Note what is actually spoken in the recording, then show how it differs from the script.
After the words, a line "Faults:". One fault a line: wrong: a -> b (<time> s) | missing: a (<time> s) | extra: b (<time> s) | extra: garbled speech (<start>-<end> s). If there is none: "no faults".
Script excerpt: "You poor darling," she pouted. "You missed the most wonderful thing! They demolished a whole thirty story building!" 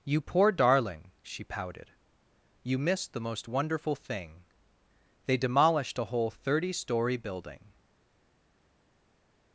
"You poor darling," she pouted. "You missed the most wonderful thing! They demolished a whole thirty story building!"
Faults:
no faults